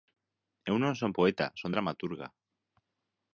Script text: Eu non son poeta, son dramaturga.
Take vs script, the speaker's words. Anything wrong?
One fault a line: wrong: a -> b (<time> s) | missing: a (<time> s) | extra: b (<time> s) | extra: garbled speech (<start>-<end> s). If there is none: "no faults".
no faults